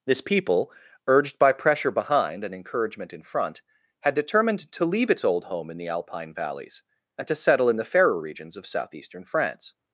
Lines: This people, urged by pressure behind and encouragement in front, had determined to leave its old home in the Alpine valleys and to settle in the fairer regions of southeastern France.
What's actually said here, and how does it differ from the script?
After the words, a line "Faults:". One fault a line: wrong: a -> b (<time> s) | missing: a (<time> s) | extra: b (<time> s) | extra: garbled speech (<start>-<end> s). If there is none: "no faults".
This people, urged by pressure behind and encouragement in front, had determined to leave its old home in the Alpine valleys and to settle in the fairer regions of southeastern France.
Faults:
no faults